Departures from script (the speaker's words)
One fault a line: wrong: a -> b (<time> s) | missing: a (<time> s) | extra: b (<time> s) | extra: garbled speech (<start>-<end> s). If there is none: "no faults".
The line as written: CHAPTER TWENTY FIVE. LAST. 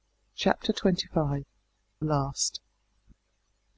no faults